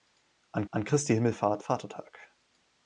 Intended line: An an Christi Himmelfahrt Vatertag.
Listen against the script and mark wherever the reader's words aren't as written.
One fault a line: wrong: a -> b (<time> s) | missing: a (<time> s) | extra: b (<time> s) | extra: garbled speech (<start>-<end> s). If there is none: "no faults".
no faults